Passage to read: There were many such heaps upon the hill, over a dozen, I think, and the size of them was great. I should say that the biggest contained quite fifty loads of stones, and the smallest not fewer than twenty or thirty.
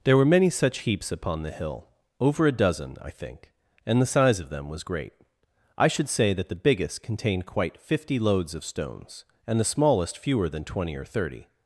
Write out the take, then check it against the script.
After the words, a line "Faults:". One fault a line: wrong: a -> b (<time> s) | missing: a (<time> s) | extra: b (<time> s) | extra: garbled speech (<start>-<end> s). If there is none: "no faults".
There were many such heaps upon the hill, over a dozen, I think, and the size of them was great. I should say that the biggest contained quite fifty loads of stones, and the smallest fewer than twenty or thirty.
Faults:
missing: not (10.2 s)